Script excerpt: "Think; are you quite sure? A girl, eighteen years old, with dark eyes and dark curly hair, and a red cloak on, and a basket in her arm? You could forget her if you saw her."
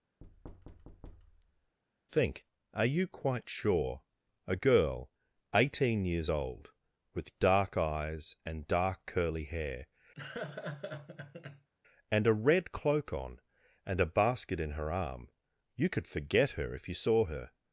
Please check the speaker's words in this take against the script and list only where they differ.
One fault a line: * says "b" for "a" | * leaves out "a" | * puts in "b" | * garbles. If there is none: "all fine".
all fine